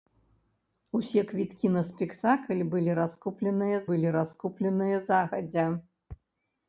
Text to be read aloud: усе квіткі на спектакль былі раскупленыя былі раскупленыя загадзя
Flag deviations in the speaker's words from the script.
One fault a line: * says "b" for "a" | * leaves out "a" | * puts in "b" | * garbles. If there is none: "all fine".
all fine